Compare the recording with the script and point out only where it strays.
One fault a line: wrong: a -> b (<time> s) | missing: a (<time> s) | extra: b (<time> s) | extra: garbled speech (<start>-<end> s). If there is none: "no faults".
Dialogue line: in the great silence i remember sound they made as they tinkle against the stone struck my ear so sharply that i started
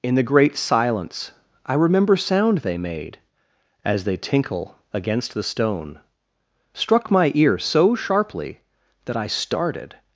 no faults